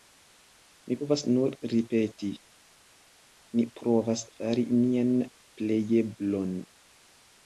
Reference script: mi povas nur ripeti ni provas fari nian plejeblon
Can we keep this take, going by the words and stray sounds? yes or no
yes